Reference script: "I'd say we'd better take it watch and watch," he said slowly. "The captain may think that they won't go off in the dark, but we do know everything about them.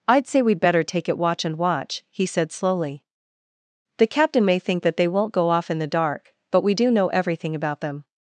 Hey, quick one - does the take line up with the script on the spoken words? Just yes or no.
yes